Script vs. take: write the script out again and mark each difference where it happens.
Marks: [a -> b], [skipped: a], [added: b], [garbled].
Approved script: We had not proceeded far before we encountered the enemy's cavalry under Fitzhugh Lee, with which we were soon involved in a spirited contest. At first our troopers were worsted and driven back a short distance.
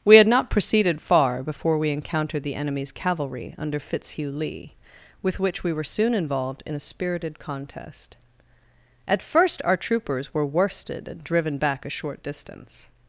We had not proceeded far before we encountered the enemy's cavalry under Fitzhugh Lee, with which we were soon involved in a spirited contest. At first our troopers were worsted and driven back a short distance.